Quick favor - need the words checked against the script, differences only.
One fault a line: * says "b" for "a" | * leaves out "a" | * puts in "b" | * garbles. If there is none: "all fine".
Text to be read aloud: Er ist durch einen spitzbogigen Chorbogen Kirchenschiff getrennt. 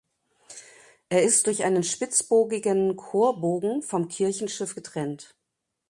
* puts in "vom"